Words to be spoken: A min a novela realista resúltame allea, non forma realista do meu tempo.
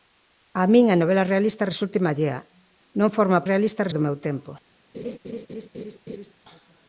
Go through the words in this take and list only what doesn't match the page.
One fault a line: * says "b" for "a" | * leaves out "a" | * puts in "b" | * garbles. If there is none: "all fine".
all fine